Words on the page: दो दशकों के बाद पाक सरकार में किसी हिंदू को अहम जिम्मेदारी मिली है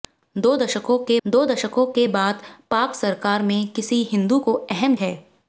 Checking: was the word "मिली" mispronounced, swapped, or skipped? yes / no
yes